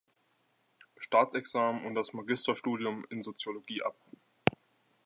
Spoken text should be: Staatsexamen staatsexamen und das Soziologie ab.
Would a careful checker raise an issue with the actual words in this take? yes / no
yes